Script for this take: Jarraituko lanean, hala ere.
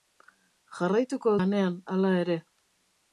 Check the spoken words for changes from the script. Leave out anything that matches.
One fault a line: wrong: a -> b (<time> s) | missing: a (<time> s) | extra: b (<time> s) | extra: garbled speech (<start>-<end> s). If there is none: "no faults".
no faults